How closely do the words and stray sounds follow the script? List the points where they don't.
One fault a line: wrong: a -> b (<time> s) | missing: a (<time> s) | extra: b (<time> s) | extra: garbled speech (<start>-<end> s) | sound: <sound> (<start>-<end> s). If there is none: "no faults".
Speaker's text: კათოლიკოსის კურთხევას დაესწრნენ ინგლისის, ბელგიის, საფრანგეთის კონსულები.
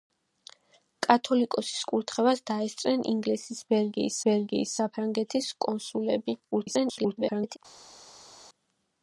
extra: ბელგიის (4.3 s)
extra: garbled speech (6.5-7.6 s)